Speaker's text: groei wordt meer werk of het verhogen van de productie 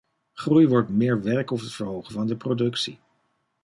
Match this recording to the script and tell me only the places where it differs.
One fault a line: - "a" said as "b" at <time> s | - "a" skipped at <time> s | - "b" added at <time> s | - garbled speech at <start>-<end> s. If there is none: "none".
none